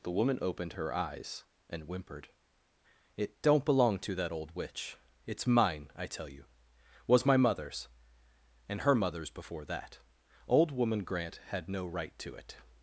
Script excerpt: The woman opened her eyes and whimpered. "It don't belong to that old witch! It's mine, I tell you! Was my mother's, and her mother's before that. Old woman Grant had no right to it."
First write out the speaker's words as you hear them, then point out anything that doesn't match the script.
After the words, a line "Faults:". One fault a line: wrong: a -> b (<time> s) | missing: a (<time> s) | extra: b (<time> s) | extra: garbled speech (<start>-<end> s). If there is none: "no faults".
The woman opened her eyes and whimpered. "It don't belong to that old witch! It's mine, I tell you! Was my mother's, and her mother's before that. Old woman Grant had no right to it."
Faults:
no faults